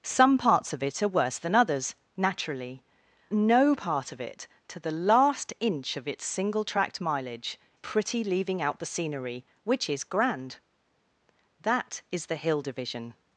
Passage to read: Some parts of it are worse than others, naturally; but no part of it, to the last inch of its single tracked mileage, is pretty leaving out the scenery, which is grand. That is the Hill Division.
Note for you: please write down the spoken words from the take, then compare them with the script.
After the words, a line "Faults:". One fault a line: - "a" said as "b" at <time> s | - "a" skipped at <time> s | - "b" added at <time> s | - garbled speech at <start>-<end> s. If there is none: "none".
Some parts of it are worse than others, naturally; no part of it, to the last inch of its single tracked mileage, pretty leaving out the scenery, which is grand. That is the Hill Division.
Faults:
- "but" skipped at 2.8 s
- "is" skipped at 7.6 s